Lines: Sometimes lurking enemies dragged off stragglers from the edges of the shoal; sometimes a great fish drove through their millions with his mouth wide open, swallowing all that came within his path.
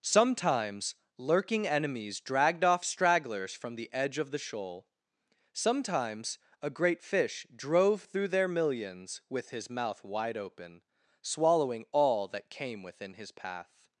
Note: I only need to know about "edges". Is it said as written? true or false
false